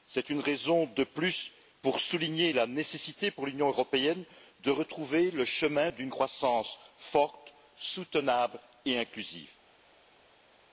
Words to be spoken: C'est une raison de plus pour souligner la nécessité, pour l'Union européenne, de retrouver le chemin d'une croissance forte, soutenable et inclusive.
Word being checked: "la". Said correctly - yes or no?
yes